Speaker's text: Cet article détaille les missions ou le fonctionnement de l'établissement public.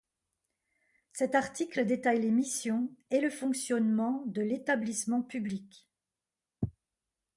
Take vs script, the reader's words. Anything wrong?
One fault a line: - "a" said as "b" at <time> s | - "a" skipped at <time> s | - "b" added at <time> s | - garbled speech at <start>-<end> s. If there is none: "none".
- "ou" said as "et" at 3.1 s